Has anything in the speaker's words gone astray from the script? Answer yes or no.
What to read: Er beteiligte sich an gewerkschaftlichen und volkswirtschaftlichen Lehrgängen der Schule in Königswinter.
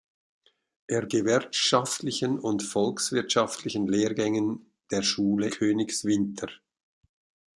yes